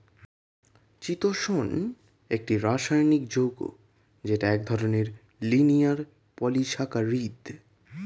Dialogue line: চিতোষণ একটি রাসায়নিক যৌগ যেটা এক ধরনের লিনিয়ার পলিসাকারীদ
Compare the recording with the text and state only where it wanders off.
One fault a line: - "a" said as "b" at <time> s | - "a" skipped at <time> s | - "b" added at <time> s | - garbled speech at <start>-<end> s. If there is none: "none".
none